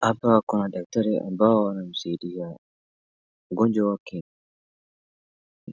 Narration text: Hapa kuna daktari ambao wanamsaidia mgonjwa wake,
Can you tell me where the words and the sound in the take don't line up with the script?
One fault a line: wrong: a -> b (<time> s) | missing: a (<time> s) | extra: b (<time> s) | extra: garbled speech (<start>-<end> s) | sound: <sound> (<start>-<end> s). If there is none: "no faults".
no faults